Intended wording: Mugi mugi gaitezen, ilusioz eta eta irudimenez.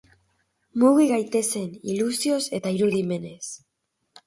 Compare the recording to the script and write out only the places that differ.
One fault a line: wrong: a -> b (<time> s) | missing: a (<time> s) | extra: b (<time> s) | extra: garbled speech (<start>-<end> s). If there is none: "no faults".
missing: mugi (1.1 s)
missing: eta (2.8 s)